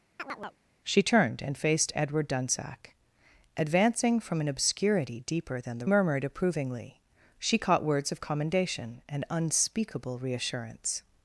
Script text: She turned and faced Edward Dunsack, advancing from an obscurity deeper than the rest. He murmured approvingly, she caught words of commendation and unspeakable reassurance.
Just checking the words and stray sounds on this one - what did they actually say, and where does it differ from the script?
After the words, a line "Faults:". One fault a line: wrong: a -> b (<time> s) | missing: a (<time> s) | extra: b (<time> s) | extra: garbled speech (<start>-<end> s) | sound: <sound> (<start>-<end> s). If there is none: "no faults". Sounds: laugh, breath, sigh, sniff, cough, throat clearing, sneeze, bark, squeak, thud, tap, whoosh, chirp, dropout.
She turned and faced Edward Dunsack, advancing from an obscurity deeper than the murmured approvingly, she caught words of commendation and unspeakable reassurance.
Faults:
sound: chirp (0.2-0.6 s)
missing: rest He (5.9 s)